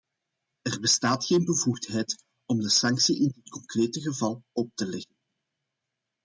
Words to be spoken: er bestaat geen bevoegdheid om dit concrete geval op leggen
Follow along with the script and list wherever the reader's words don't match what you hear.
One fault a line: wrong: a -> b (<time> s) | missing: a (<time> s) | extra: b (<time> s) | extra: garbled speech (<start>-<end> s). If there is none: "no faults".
extra: de sanctie in (2.6 s)
extra: te (4.7 s)